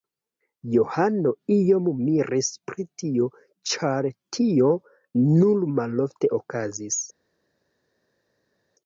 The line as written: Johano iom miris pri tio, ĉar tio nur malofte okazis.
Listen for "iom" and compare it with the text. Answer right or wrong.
right